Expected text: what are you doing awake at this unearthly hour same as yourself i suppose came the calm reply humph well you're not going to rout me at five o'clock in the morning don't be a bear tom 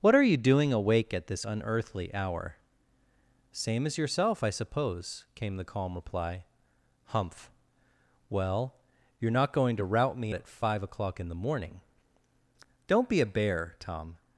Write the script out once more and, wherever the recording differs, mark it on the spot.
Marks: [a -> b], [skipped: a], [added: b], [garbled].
what are you doing awake at this unearthly hour same as yourself i suppose came the calm reply humph well you're not going to rout me at five o'clock in the morning don't be a bear tom